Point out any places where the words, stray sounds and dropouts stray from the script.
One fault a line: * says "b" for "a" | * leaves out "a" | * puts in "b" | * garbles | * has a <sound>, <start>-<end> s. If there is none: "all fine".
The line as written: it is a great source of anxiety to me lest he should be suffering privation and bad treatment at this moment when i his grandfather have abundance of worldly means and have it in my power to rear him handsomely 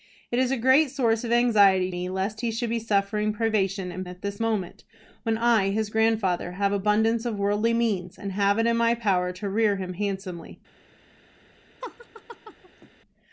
* leaves out "to"
* leaves out "bad treatment"
* has a laugh, 11.8-12.9 s